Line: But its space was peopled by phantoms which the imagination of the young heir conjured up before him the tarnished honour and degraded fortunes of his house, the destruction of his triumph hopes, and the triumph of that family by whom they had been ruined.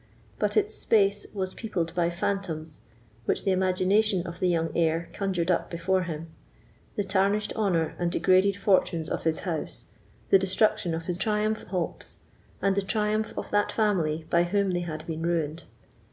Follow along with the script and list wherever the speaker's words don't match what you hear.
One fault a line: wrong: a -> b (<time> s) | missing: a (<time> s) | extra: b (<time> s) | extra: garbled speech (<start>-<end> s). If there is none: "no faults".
no faults